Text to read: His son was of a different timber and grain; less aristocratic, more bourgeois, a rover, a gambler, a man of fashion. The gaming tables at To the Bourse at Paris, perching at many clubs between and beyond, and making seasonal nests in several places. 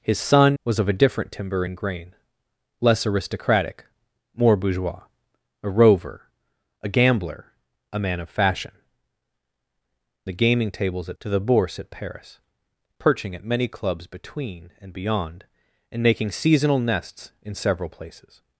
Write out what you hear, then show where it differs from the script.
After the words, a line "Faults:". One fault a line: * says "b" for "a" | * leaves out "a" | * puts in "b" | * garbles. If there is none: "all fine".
His son was of a different timber and grain; less aristocratic, more bourgeois, a rover, a gambler, a man of fashion. The gaming tables at To the Bourse at Paris, perching at many clubs between and beyond, and making seasonal nests in several places.
Faults:
all fine